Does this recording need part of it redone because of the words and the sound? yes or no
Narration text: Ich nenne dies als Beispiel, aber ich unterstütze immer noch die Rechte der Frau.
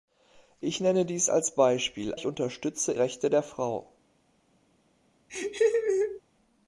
yes